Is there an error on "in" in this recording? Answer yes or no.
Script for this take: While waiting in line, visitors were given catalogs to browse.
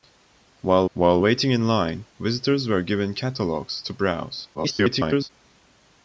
no